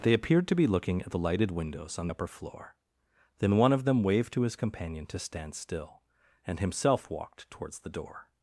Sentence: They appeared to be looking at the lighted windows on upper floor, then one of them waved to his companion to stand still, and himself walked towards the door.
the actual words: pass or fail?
pass